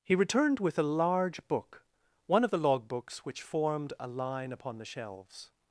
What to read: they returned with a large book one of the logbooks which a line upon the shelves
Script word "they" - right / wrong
wrong